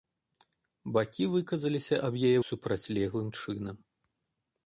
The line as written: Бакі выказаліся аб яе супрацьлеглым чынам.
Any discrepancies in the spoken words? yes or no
no